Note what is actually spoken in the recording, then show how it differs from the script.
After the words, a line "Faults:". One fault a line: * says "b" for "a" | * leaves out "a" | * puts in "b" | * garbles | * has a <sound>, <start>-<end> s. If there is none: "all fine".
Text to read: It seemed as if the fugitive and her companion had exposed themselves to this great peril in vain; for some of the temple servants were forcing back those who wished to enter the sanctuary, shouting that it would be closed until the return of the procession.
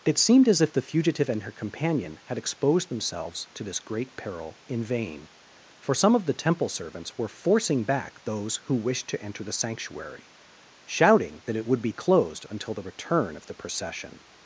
It seemed as if the fugitive and her companion had exposed themselves to this great peril in vain; for some of the temple servants were forcing back those who wished to enter the sanctuary, shouting that it would be closed until the return of the procession.
Faults:
all fine